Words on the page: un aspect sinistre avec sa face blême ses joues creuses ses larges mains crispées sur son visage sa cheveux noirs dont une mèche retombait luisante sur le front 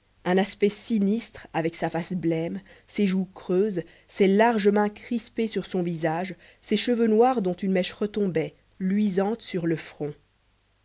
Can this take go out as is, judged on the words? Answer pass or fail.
fail